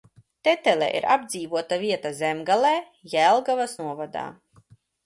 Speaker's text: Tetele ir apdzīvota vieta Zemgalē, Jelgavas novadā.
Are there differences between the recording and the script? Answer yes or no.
no